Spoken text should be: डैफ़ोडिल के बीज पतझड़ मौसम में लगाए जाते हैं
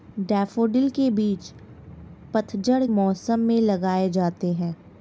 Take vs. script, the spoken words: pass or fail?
pass